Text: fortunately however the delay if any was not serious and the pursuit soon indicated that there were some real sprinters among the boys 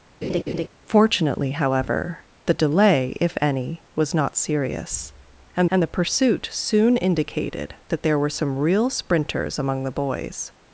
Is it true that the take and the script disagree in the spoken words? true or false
true